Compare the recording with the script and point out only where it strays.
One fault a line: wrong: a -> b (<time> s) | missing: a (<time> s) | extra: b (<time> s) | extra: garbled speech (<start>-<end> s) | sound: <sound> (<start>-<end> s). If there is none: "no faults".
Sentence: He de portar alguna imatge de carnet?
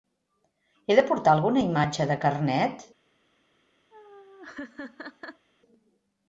sound: laugh (3.9-5.5 s)